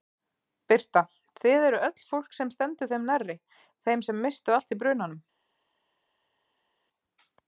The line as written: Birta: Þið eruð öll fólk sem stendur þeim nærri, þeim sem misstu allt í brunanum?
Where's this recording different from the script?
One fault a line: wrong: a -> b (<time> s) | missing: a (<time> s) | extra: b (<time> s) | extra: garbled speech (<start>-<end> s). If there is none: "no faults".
no faults